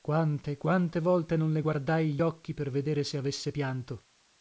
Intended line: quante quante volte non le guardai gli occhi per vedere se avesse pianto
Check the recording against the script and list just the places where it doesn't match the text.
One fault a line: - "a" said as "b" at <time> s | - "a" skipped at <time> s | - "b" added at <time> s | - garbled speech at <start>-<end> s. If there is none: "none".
none